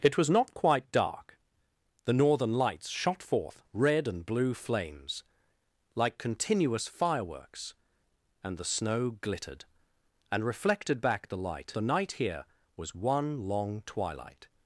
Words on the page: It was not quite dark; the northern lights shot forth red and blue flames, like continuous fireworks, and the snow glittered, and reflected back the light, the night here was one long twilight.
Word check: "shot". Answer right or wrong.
right